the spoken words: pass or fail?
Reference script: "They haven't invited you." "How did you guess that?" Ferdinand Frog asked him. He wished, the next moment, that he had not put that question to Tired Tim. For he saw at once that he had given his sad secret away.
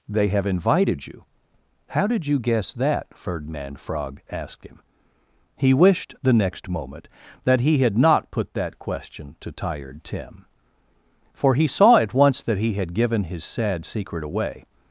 fail